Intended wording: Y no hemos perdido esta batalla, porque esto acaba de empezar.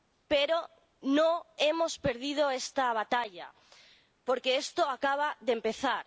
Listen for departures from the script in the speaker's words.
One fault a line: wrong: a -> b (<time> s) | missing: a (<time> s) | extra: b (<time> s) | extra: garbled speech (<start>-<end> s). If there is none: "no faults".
wrong: Y -> Pero (0.3 s)